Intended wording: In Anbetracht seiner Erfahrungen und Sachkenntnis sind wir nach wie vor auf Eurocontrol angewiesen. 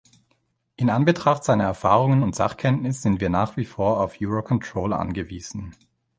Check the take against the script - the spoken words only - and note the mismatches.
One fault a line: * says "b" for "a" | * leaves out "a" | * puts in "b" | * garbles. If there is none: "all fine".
all fine